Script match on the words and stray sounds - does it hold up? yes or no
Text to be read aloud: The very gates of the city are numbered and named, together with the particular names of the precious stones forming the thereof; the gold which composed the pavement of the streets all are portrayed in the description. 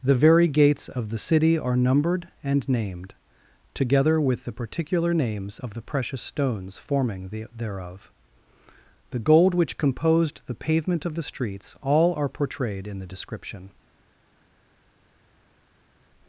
yes